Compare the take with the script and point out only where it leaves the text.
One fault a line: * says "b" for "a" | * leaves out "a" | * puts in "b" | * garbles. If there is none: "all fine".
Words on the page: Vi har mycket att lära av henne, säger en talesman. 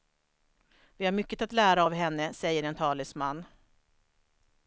all fine